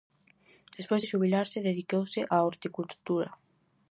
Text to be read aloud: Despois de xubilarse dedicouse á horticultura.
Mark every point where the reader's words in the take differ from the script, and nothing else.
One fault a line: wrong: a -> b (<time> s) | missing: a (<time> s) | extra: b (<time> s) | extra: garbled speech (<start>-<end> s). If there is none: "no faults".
no faults